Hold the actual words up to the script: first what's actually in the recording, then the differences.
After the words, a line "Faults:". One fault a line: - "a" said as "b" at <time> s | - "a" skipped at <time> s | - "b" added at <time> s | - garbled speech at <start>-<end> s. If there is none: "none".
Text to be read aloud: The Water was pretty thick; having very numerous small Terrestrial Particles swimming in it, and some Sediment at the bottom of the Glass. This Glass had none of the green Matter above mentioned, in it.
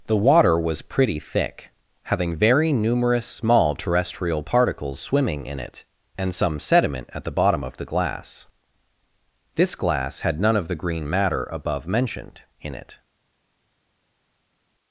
The Water was pretty thick; having very numerous small Terrestrial Particles swimming in it, and some Sediment at the bottom of the Glass. This Glass had none of the green Matter above mentioned, in it.
Faults:
none